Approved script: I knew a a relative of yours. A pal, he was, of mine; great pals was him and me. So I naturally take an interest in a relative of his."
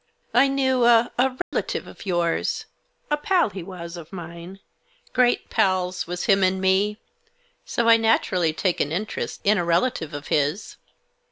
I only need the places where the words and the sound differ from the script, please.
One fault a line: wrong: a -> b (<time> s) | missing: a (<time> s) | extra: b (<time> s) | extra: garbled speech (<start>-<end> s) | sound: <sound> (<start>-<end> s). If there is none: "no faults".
sound: dropout (1.4-1.5 s)